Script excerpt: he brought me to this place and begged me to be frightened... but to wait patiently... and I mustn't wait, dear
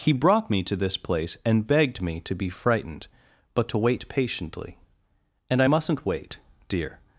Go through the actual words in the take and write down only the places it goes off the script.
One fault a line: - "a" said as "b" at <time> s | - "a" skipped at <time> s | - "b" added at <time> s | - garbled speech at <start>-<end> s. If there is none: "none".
none